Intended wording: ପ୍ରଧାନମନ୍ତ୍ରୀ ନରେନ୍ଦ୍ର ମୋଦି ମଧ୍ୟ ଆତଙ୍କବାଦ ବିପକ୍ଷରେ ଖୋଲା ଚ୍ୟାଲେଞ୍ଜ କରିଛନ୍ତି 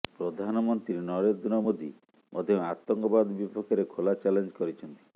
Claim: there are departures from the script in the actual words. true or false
false